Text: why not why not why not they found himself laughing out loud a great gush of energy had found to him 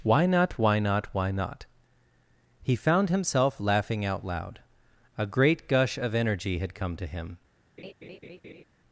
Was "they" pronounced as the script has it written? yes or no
no